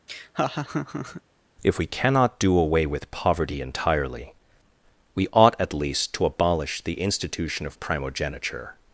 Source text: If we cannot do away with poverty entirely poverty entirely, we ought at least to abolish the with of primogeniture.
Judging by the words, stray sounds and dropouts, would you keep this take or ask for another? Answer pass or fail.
fail